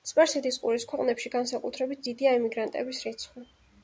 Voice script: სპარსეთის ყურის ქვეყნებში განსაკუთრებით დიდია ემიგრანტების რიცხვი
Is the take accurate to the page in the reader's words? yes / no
yes